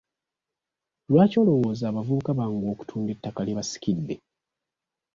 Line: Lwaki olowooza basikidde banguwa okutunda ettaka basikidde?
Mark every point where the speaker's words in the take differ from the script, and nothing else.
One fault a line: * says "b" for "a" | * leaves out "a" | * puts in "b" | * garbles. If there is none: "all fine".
* says "abavubuka" for "basikidde"
* puts in "lye"